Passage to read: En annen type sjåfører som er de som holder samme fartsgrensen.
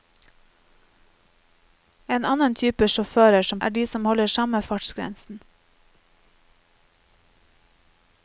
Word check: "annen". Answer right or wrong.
right